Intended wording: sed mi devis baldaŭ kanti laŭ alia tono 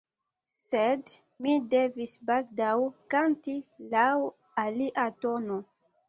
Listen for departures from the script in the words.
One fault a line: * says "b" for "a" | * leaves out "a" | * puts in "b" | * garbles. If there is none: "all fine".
all fine